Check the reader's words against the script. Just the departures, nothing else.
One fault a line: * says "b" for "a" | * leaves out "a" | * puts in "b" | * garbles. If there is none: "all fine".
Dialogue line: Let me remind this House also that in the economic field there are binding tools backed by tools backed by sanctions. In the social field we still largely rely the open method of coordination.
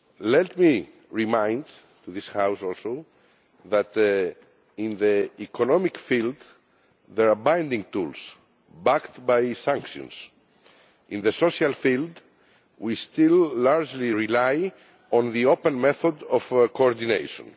* leaves out "tools backed by"
* puts in "on"